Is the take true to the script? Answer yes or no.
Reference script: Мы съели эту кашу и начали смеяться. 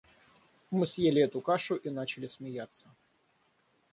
yes